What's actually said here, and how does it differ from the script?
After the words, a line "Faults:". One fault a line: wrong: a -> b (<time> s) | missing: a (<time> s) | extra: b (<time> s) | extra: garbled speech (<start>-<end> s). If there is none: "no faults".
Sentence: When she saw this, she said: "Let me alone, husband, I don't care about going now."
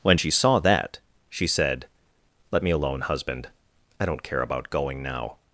When she saw that, she said: "Let me alone, husband, I don't care about going now."
Faults:
wrong: this -> that (0.6 s)